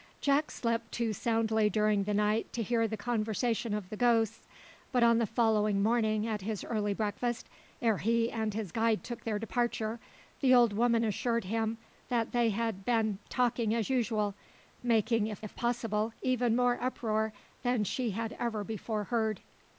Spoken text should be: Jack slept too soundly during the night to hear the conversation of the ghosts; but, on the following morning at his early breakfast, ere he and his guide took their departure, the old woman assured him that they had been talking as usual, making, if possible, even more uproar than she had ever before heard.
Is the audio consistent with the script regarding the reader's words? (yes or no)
no